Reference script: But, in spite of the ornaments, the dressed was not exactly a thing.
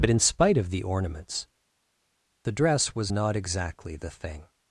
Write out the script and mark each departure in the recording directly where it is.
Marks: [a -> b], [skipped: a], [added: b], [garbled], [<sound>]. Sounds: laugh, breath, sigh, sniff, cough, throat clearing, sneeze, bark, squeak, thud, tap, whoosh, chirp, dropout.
But, in spite of the ornaments, the [dressed -> dress] was not exactly [a -> the] thing.